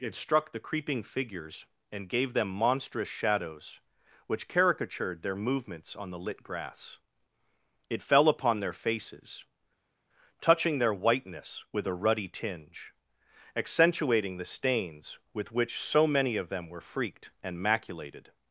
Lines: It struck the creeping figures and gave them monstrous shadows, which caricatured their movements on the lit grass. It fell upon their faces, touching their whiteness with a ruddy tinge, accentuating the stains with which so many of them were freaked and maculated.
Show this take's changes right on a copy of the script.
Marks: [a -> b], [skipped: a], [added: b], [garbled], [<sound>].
It struck the creeping figures and gave them monstrous shadows, which caricatured their movements on the lit grass. It fell upon their faces, touching their whiteness with a ruddy tinge, accentuating the stains with which so many of them were freaked and maculated.